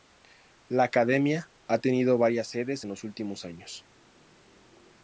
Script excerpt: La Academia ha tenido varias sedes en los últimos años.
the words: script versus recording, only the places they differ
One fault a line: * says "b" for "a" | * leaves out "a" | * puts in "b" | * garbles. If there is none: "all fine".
all fine